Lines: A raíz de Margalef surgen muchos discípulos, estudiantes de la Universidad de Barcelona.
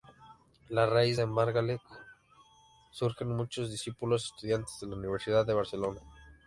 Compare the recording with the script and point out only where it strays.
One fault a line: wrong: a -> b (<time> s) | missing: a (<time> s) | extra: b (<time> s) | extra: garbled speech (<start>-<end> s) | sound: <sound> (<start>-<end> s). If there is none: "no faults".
no faults